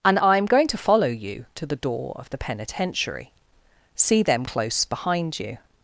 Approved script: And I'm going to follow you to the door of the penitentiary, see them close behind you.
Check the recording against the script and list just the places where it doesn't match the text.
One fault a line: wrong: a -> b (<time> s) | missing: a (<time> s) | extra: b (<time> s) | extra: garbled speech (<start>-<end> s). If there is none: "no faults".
no faults